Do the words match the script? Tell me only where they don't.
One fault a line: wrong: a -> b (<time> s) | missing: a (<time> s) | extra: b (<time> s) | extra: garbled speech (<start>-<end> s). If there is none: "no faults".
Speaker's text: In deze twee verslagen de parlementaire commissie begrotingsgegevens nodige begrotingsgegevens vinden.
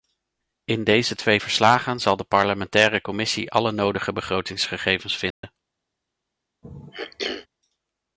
extra: zal (2.0 s)
wrong: begrotingsgegevens -> alle (3.5 s)